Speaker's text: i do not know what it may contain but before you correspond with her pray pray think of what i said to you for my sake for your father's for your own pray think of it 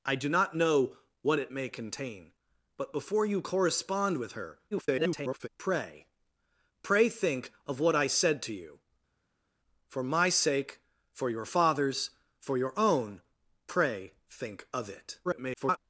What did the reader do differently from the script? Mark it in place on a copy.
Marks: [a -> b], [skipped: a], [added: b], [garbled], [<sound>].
i do not know what it may contain but before you correspond with her [garbled] pray pray think of what i said to you for my sake for your father's for your own pray think of it [garbled]